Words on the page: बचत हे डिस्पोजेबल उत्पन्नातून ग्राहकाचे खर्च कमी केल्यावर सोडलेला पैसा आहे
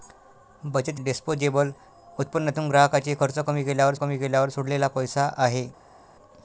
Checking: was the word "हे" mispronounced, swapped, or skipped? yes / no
yes